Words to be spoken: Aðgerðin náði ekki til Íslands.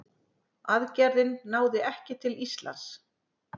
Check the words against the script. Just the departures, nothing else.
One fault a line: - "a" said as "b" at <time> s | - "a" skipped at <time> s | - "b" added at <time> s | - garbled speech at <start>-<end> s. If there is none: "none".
none